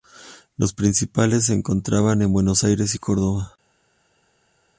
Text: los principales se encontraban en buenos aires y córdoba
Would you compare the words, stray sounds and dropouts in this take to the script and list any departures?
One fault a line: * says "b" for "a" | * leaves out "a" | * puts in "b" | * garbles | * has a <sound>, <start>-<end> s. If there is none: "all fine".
all fine